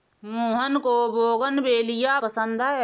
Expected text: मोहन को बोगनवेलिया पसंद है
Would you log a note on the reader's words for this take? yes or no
no